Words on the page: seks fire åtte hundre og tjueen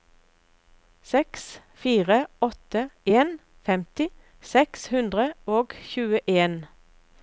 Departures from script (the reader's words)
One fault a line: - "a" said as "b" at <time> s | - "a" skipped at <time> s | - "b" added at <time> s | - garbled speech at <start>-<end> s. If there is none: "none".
- "en femti seks" added at 3.2 s